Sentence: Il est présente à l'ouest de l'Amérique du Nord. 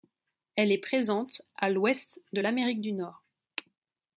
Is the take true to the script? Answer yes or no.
no